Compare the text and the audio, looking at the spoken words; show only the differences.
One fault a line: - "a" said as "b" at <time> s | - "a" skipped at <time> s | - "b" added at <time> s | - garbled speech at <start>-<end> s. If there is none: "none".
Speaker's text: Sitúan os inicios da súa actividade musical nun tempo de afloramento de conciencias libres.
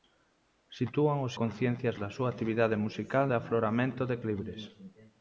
- "inicios" said as "conciencias" at 1.4 s
- "nun tempo" skipped at 3.3 s
- "conciencias" skipped at 4.2 s